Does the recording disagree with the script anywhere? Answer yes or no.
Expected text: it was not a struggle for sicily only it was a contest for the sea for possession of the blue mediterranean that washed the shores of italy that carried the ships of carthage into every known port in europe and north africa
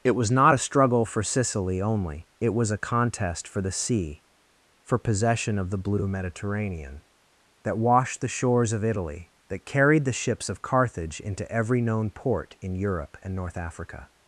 no